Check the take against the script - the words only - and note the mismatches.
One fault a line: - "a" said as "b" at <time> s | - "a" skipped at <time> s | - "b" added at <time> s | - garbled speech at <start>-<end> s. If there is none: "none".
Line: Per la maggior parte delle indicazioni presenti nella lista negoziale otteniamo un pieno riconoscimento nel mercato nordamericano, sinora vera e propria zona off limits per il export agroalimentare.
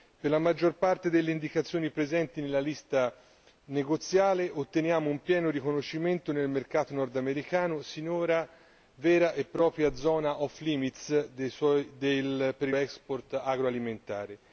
none